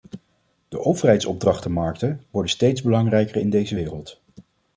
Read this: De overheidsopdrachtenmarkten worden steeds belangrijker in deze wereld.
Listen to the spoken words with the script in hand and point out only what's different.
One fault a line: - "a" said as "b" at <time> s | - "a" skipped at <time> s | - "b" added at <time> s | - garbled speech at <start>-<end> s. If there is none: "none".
none